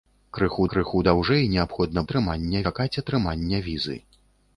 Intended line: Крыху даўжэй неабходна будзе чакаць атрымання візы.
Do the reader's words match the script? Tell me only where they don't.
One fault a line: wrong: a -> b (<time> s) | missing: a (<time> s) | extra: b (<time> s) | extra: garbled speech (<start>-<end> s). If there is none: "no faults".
extra: крыху (0.7 s)
wrong: будзе -> атрымання (2.0 s)